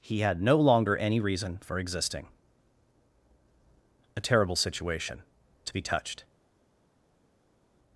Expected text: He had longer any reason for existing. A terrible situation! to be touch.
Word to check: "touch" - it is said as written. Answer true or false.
false